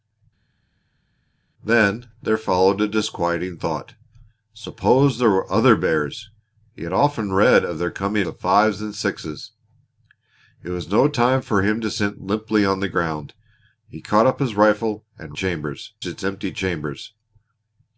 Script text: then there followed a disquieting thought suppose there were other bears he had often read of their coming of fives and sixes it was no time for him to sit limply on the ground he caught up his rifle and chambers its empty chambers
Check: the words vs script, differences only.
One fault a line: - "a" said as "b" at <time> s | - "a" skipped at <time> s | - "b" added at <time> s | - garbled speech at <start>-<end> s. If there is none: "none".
none